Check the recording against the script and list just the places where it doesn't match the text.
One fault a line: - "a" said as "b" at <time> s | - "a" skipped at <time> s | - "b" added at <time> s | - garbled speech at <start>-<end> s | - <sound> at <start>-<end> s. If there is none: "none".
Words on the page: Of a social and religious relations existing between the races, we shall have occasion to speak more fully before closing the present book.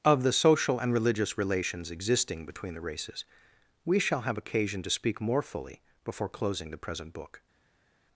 - "a" said as "the" at 0.2 s